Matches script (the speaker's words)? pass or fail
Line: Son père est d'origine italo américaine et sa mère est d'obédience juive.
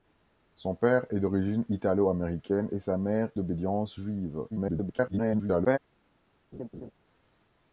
fail